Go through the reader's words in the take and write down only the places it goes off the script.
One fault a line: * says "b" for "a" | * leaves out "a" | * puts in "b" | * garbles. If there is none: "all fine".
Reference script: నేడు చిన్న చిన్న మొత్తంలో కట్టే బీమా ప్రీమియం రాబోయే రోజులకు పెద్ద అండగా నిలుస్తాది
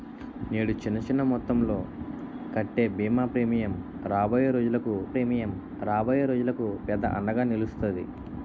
* puts in "ప్రీమియం రాబోయే రోజులకు"